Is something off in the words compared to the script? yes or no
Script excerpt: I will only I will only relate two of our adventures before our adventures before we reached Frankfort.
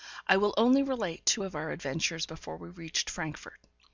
yes